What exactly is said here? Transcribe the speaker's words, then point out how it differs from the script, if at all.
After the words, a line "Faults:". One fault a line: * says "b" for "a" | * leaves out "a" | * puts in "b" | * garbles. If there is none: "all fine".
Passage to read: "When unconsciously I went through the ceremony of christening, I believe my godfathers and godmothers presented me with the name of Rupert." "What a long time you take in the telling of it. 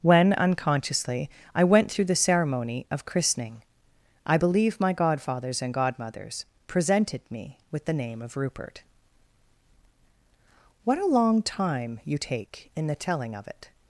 "When unconsciously I went through the ceremony of christening, I believe my godfathers and godmothers presented me with the name of Rupert." "What a long time you take in the telling of it.
Faults:
all fine